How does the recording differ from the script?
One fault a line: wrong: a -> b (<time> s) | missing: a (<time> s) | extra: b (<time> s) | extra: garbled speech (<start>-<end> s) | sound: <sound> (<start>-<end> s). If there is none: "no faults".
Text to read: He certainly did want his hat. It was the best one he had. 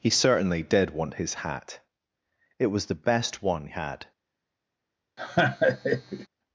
missing: he (3.7 s)
sound: laugh (5.2-6.3 s)